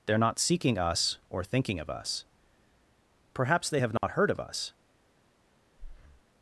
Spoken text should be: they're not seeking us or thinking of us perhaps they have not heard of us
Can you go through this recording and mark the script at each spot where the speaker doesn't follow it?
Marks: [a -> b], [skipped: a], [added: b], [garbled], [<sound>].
they're not seeking us or thinking of us perhaps they have not [dropout] heard of us [breath]